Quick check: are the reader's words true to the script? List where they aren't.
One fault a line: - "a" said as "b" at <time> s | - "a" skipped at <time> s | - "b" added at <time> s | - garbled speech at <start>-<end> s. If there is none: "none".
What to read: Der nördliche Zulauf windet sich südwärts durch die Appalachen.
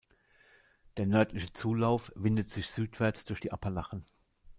none